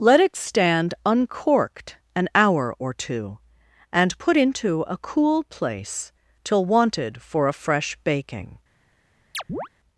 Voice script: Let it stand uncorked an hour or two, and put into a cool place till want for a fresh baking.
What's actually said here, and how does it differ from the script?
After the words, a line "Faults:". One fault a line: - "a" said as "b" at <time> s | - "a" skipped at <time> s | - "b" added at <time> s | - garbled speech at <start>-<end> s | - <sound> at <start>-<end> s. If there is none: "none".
Let it stand uncorked an hour or two, and put into a cool place till wanted for a fresh baking.
Faults:
- "want" said as "wanted" at 6.6 s
- chirp at 9.3-9.7 s